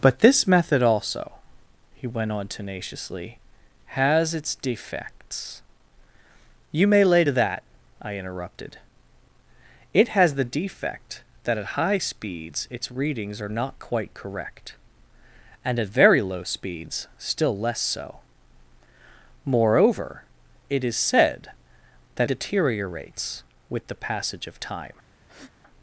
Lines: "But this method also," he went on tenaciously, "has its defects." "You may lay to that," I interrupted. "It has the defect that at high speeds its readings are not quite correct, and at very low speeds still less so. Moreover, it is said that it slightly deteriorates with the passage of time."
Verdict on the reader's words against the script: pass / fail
fail